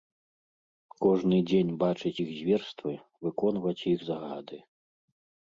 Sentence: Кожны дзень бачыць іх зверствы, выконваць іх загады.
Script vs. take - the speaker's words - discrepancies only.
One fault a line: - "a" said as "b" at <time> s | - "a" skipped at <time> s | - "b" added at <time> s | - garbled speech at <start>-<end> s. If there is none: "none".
none